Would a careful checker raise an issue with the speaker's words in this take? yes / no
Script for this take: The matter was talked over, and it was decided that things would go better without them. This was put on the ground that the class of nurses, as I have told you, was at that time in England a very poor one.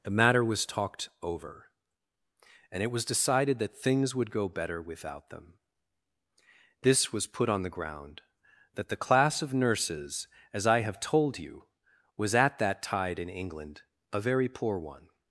yes